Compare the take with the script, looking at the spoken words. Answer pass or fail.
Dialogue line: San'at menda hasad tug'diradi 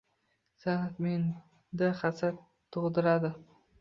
pass